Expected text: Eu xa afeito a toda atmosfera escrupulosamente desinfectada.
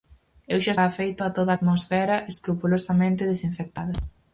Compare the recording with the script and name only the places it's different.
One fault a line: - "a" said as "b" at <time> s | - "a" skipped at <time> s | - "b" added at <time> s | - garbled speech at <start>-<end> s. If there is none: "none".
none